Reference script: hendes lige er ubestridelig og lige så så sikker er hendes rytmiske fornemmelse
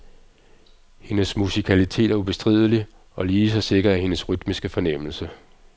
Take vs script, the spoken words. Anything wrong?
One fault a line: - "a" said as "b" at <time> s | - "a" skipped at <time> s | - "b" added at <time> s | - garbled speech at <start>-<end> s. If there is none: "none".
- "lige" said as "musikalitet" at 1.4 s
- "så" skipped at 3.6 s